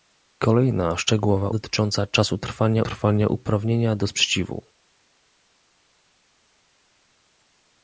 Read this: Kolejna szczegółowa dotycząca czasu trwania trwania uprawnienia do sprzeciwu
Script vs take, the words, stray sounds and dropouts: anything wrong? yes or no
no